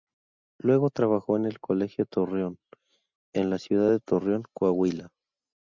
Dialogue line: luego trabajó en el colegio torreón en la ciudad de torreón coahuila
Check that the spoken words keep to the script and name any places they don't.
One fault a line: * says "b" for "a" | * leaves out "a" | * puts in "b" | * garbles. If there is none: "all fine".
all fine